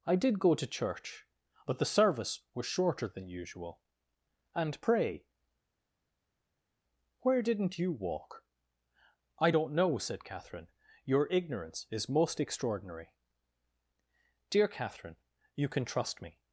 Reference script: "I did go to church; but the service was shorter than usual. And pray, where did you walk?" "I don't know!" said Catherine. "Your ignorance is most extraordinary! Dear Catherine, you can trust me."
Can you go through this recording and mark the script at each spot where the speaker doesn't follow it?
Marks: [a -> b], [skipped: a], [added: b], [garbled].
"I did go to church; but the service was shorter than usual. And pray, where [did -> didn't] you walk?" "I don't know!" said Catherine. "Your ignorance is most extraordinary! Dear Catherine, you can trust me."